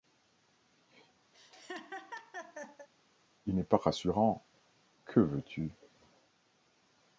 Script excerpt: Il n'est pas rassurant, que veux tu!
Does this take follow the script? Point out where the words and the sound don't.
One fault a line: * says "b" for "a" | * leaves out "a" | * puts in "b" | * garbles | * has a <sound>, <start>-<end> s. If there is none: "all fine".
* has a laugh, 1.3-2.9 s